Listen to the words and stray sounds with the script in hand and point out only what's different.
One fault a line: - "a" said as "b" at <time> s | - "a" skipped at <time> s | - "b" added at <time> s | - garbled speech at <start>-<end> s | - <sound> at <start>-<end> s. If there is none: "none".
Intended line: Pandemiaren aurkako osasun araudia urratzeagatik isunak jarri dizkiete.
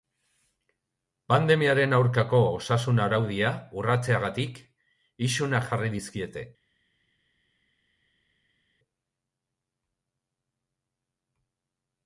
none